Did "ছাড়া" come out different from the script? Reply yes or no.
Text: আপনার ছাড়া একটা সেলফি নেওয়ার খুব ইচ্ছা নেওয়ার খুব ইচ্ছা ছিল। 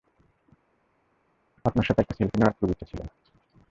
yes